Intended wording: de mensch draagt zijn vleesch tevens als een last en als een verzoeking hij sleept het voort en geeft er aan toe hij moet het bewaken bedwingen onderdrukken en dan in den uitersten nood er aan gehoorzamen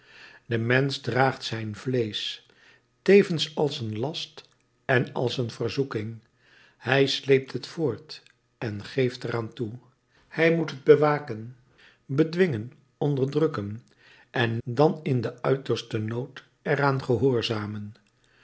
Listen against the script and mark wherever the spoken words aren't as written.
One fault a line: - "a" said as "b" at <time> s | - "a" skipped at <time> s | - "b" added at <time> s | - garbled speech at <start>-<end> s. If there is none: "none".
none